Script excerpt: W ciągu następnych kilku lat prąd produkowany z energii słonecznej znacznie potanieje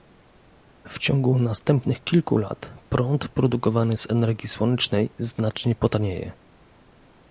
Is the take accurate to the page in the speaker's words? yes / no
yes